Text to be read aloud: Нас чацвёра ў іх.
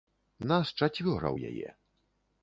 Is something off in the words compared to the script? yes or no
yes